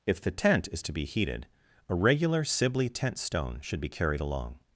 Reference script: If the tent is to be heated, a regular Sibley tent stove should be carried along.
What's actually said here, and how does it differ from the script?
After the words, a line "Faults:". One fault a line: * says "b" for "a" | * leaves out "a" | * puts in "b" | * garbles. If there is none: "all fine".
If the tent is to be heated, a regular Sibley tent stone should be carried along.
Faults:
* says "stone" for "stove"